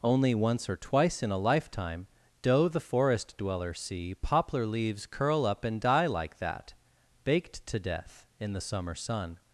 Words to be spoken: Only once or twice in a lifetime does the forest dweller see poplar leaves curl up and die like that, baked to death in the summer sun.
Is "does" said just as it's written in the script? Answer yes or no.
no